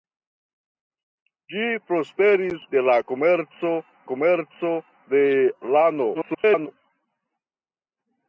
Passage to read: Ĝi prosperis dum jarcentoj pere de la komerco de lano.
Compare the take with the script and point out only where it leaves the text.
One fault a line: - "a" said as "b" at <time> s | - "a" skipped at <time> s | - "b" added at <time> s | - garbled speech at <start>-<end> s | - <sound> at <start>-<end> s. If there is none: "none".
- "dum jarcentoj pere" skipped at 2.6 s
- "komerco" added at 4.1 s
- garbled speech at 6.1-6.7 s